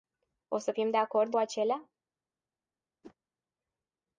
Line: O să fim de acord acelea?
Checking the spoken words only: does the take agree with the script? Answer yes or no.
yes